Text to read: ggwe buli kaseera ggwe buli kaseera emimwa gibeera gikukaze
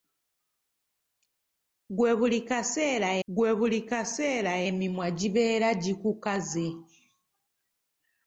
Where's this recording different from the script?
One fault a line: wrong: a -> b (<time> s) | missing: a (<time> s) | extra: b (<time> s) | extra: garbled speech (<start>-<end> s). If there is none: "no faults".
no faults